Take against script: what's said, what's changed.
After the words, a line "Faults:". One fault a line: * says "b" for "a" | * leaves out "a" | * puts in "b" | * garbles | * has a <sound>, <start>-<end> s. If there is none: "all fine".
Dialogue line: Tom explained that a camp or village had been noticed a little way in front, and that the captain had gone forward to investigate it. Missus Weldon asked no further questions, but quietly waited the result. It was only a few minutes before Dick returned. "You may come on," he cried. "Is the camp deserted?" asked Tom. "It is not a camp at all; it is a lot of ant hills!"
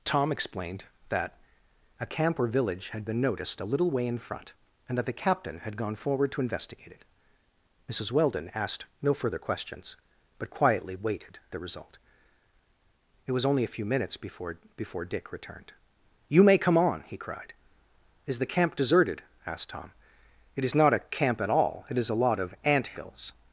Tom explained that a camp or village had been noticed a little way in front, and that the captain had gone forward to investigate it. Missus Weldon asked no further questions, but quietly waited the result. It was only a few minutes before before Dick returned. "You may come on," he cried. "Is the camp deserted?" asked Tom. "It is not a camp at all; it is a lot of ant hills!"
Faults:
* puts in "before"